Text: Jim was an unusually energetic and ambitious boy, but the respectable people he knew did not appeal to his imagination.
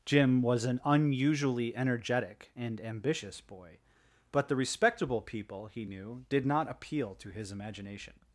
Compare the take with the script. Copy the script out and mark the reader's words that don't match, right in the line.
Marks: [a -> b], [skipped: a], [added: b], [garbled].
Jim was an unusually energetic and ambitious boy, but the respectable people he knew did not appeal to his imagination.